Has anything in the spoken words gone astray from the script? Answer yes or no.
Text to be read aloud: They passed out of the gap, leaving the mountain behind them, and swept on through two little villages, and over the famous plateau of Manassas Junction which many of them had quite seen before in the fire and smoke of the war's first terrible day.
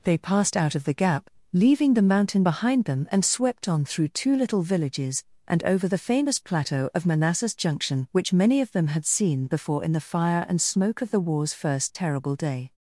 yes